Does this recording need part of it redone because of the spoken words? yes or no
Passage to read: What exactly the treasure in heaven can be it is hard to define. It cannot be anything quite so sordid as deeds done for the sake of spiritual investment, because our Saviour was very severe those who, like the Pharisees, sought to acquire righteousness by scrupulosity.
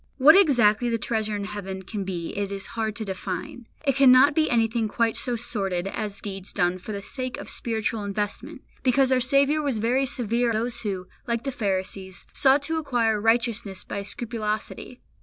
no